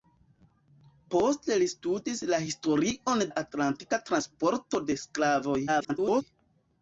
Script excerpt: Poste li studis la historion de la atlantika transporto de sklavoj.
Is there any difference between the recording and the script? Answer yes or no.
yes